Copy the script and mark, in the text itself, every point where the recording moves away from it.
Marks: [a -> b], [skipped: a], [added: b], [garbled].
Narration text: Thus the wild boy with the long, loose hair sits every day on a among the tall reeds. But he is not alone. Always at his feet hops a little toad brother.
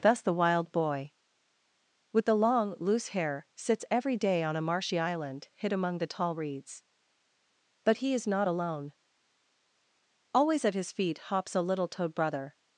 Thus the wild boy with the long, loose hair sits every day on a [added: marshy island hid] among the tall reeds. But he is not alone. Always at his feet hops a little toad brother.